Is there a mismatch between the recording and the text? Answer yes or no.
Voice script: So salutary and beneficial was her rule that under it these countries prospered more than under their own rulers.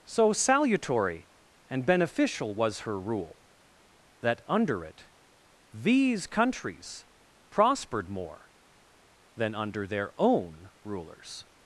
no